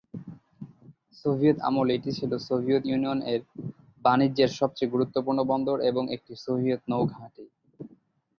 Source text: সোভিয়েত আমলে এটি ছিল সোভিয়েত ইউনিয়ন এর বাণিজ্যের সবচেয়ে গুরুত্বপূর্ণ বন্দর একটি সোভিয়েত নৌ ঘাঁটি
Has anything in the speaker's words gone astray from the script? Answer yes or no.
yes